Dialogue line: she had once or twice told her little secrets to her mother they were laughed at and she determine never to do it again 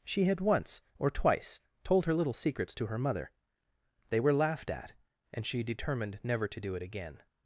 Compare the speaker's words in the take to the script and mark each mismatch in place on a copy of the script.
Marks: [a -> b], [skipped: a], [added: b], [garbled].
she had once or twice told her little secrets to her mother they were laughed at and she [determine -> determined] never to do it again